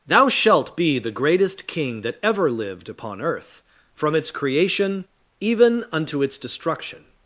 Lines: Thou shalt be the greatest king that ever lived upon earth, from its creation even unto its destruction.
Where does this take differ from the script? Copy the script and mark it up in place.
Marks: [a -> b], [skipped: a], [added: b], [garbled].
Thou shalt be the greatest king that ever lived upon earth, from its creation even unto its destruction.